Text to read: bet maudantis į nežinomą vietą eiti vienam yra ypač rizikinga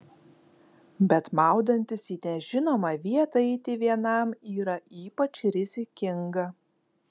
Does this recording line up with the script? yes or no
yes